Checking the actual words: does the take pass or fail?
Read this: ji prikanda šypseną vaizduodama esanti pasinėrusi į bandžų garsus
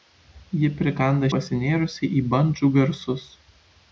fail